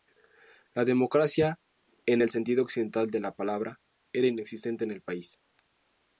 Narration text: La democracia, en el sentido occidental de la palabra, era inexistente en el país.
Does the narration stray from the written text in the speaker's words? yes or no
no